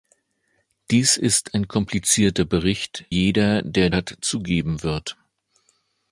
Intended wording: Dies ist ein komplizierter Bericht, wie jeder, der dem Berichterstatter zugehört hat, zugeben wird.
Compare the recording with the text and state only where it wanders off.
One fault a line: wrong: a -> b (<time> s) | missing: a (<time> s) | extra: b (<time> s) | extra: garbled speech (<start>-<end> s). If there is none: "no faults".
missing: wie (3.0 s)
missing: dem Berichterstatter zugehört (3.9 s)